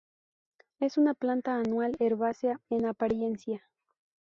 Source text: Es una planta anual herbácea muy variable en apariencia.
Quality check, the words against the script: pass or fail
fail